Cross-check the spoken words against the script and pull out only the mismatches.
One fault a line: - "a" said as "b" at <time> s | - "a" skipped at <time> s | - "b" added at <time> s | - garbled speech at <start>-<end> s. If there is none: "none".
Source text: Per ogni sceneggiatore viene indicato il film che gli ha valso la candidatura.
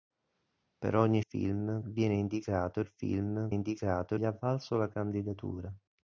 - "sceneggiatore" said as "film" at 1.2 s
- "che" said as "indicato" at 3.5 s